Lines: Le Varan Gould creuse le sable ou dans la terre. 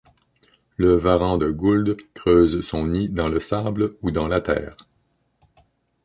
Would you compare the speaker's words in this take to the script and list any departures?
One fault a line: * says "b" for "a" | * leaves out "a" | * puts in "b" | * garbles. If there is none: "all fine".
* puts in "de"
* puts in "son nid dans"